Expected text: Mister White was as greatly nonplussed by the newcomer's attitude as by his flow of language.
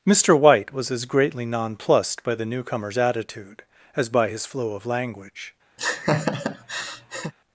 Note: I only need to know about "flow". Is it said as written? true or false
true